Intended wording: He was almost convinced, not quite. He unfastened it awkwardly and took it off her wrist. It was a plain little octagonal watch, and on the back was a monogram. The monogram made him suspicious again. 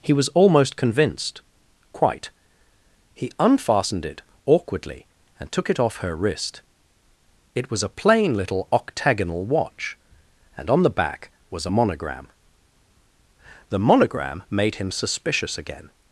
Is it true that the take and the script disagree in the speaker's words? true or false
true